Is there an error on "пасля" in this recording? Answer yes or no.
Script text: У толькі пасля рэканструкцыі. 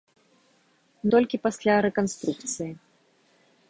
no